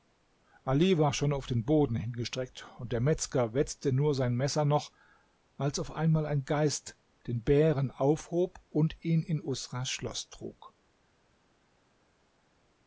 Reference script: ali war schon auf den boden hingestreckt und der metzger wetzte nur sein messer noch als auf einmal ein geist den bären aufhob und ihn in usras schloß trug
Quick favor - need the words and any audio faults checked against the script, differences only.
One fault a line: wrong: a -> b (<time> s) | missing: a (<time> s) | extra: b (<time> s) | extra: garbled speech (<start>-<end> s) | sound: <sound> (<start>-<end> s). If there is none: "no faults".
no faults